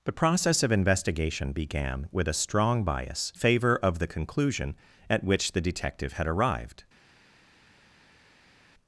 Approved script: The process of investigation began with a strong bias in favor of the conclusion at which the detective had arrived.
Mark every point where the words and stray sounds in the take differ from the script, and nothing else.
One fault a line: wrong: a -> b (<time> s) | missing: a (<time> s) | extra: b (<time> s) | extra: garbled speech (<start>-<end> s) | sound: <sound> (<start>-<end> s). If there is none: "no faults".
missing: in (3.3 s)